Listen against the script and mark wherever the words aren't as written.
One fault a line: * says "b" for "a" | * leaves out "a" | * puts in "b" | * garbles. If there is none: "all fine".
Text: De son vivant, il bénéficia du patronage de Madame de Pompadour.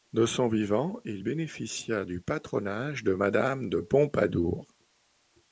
all fine